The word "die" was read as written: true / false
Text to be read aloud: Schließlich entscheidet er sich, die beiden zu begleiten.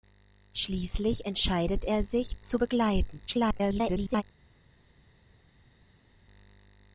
false